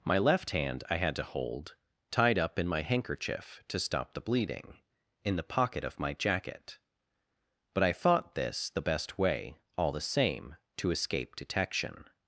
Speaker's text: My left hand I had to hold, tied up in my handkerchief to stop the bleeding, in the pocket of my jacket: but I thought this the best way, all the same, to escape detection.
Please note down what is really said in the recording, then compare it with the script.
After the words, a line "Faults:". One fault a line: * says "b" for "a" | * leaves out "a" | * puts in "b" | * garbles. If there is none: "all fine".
My left hand I had to hold, tied up in my handkerchief to stop the bleeding, in the pocket of my jacket: but I thought this the best way, all the same, to escape detection.
Faults:
all fine